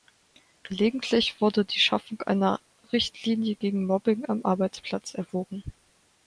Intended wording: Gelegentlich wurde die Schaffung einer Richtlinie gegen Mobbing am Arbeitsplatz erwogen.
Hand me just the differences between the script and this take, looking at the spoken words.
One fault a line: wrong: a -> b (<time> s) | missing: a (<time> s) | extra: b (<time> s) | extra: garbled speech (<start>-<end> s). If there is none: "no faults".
no faults